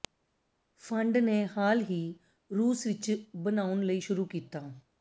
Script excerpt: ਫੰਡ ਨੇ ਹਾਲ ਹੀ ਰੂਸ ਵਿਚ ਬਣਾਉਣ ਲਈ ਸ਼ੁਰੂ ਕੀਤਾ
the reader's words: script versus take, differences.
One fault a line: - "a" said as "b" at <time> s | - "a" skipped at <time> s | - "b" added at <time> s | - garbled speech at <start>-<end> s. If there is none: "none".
none